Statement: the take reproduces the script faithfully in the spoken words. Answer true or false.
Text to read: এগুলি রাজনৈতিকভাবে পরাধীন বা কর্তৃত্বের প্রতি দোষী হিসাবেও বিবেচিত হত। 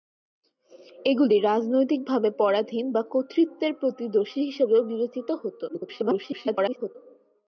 false